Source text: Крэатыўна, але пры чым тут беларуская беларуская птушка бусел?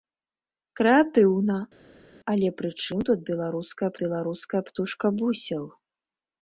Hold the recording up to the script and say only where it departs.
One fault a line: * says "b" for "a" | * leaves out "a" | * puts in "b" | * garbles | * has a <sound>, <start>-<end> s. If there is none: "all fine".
all fine